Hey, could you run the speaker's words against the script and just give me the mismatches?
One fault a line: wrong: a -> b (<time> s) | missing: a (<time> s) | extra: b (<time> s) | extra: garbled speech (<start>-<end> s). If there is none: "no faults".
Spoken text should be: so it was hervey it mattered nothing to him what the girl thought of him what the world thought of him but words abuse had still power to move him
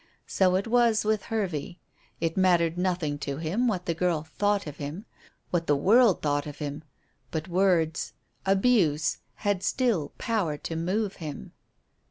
extra: with (1.1 s)